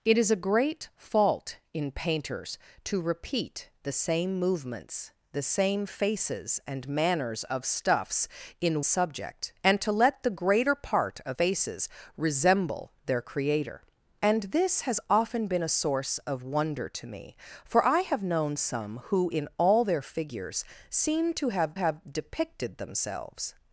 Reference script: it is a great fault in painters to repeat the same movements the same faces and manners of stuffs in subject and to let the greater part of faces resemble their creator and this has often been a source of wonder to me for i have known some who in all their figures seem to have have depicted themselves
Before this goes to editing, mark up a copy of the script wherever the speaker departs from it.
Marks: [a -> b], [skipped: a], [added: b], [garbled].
it is a great fault in painters to repeat the same movements the same faces and manners of stuffs in subject and to let the greater part of faces resemble their creator and this has often been a source of wonder to me for i have known some who in all their figures seem to have have depicted themselves